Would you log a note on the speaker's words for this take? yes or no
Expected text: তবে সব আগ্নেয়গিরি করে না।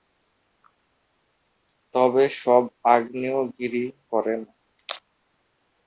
no